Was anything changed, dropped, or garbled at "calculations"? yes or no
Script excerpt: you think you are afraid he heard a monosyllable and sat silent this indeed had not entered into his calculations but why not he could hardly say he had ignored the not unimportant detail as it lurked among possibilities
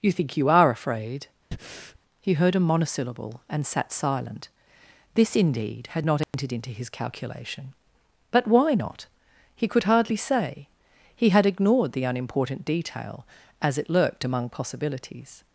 yes